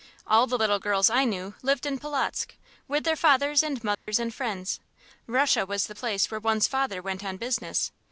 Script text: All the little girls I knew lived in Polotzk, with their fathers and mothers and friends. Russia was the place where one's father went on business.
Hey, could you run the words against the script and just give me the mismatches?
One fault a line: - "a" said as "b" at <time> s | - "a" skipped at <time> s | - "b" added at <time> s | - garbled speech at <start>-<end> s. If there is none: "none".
none